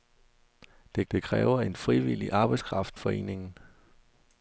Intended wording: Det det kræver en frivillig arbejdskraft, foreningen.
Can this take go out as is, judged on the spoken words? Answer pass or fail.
pass